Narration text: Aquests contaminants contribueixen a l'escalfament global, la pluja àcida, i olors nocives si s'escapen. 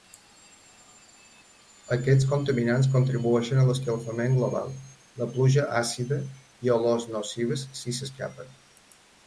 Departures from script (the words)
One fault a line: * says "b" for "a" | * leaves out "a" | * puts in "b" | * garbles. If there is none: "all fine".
all fine